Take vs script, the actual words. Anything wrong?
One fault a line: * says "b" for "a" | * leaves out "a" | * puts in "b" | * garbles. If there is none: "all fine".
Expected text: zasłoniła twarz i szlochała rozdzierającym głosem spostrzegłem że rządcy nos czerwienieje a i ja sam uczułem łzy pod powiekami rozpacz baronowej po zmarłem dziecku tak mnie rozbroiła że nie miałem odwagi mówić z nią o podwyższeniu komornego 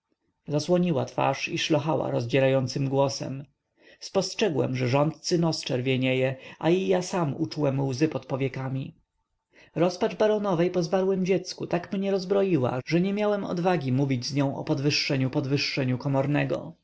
* puts in "podwyższeniu"